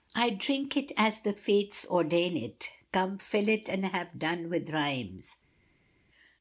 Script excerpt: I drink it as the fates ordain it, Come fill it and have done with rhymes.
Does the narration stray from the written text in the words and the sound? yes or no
no